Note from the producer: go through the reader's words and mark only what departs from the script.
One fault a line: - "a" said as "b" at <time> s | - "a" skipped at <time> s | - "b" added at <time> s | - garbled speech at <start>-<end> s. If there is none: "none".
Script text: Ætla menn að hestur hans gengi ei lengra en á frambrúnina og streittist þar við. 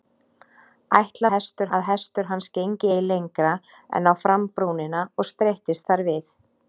- "menn" said as "hestur" at 1.3 s